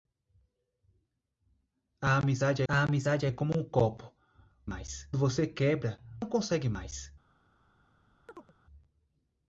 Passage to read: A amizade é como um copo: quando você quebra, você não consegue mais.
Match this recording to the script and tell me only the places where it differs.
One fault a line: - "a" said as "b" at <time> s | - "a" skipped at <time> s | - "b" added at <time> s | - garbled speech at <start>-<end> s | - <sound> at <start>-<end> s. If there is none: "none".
- "a amizade" added at 2.7 s
- "quando" said as "mais" at 4.6 s
- "você não" skipped at 6.0 s
- chirp at 8.3-8.5 s